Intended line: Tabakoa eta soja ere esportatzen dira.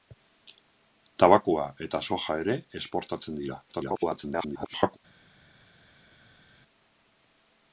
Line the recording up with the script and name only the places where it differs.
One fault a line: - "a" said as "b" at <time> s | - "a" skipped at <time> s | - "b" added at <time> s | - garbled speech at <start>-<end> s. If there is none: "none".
- garbled speech at 3.7-5.0 s